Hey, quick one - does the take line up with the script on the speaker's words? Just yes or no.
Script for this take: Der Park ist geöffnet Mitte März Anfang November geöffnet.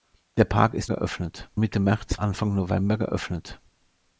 yes